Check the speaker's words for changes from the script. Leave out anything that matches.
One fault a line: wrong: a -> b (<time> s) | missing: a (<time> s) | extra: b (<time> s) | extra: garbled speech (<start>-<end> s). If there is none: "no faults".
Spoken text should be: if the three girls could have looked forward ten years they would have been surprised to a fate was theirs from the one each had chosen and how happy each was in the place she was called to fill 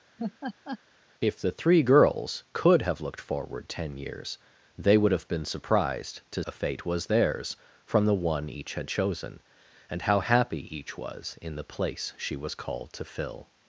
no faults